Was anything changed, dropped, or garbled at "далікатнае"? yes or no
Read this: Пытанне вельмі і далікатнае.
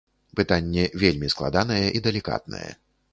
no